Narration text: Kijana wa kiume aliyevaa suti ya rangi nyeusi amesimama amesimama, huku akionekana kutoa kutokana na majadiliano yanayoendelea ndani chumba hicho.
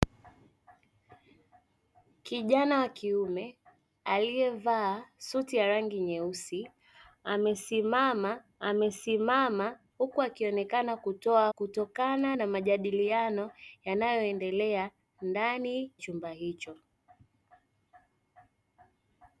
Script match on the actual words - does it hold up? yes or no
yes